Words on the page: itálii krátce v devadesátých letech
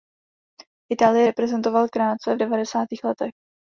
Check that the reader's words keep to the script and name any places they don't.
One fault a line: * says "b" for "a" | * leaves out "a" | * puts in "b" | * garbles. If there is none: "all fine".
* puts in "reprezentoval"